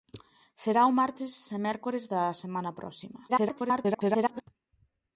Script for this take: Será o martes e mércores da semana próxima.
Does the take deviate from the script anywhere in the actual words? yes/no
yes